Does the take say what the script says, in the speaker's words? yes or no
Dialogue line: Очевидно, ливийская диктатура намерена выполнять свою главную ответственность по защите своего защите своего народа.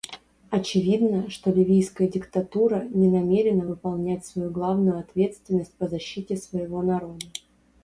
no